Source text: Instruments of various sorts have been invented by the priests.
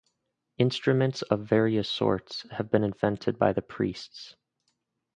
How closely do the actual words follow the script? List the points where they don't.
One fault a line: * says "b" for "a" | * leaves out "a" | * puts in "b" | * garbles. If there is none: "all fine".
all fine